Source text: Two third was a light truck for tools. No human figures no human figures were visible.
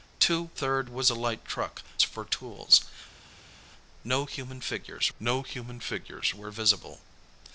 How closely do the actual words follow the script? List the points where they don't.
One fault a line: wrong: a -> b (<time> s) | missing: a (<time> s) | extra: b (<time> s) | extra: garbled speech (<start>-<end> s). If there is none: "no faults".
no faults